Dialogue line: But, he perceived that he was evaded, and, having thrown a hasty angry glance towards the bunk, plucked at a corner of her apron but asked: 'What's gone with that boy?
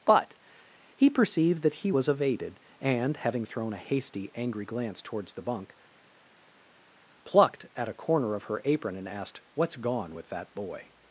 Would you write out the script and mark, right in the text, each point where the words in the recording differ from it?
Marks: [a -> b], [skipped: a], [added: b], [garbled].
But, he perceived that he was evaded, and, having thrown a hasty angry glance towards the bunk, plucked at a corner of her apron [but -> and] asked: 'What's gone with that boy?